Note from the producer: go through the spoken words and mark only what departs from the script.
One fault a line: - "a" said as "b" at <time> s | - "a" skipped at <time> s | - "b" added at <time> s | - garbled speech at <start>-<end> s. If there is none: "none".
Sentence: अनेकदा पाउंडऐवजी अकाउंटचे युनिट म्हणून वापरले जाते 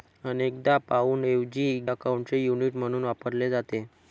none